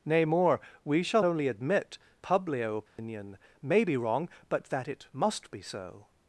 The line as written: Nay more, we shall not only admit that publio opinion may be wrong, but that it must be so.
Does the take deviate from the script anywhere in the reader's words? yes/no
yes